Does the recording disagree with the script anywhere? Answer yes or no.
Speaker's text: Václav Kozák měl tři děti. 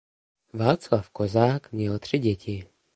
no